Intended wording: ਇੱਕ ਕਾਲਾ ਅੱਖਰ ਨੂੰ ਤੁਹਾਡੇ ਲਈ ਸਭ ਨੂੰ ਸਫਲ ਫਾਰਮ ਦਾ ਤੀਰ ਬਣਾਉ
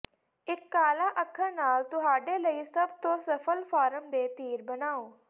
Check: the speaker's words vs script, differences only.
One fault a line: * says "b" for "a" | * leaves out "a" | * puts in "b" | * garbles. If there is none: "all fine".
* says "ਨਾਲ" for "ਨੂੰ"
* says "ਤੋਂ" for "ਨੂੰ"
* says "ਦੇ" for "ਦਾ"